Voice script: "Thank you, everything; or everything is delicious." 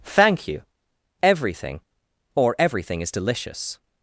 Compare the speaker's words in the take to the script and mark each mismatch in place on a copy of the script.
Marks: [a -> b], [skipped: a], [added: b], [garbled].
"Thank you, everything; or everything is delicious."